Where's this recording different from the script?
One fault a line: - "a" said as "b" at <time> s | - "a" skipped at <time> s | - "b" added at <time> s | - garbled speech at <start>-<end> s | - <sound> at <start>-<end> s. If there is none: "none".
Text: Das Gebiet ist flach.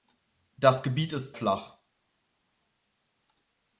none